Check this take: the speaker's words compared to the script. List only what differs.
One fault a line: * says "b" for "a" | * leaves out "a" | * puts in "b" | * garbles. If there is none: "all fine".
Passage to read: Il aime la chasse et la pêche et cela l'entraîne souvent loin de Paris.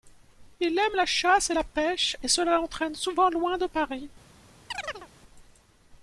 all fine